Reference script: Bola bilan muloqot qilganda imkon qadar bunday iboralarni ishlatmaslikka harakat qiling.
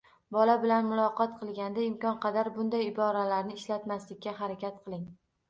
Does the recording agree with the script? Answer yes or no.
yes